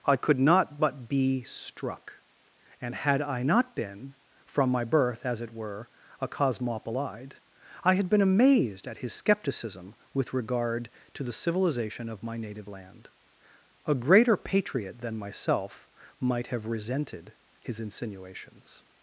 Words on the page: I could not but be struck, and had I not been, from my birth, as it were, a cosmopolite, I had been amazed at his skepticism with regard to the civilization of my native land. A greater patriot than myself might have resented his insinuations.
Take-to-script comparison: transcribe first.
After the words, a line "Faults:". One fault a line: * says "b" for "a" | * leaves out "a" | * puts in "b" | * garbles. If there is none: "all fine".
I could not but be struck, and had I not been, from my birth, as it were, a cosmopolite, I had been amazed at his skepticism with regard to the civilization of my native land. A greater patriot than myself might have resented his insinuations.
Faults:
all fine